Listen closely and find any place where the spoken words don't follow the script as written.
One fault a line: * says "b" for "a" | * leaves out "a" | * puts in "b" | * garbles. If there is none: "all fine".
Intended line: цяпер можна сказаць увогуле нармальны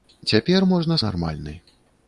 * leaves out "сказаць увогуле"